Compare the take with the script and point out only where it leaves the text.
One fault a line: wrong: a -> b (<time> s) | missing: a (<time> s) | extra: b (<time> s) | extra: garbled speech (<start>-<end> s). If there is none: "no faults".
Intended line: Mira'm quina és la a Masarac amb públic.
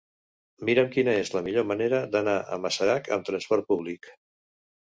extra: millor manera d'anar (1.5 s)
extra: trasport (3.3 s)